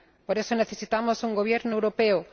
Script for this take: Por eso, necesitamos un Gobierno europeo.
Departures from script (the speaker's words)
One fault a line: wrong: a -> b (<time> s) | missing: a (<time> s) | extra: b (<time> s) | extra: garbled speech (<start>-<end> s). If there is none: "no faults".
no faults